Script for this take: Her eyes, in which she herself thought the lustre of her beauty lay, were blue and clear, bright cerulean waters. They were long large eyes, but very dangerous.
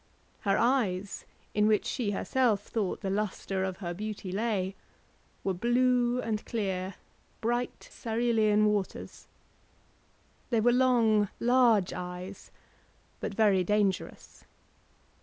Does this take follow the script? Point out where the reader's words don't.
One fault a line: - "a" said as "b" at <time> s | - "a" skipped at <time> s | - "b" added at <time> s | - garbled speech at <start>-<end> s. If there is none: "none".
none